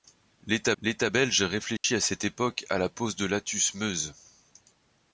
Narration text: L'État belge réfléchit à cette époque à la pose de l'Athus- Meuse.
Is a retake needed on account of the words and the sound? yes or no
yes